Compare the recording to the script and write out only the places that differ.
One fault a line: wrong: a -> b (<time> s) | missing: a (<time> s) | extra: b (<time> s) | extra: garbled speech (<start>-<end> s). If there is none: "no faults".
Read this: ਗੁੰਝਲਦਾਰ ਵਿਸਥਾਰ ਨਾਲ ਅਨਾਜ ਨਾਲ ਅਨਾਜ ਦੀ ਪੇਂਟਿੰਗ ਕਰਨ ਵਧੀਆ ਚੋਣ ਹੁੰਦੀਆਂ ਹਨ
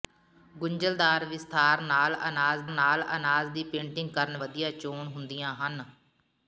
no faults